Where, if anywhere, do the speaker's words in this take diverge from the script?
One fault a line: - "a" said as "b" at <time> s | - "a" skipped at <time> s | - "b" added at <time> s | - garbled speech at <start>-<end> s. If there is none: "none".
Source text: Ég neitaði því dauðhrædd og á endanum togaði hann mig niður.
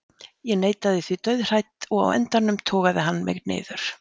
none